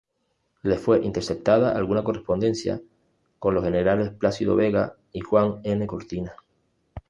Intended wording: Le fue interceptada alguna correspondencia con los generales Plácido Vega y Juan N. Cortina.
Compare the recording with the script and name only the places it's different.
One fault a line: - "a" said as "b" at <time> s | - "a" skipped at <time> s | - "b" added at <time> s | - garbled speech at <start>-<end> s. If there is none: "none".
none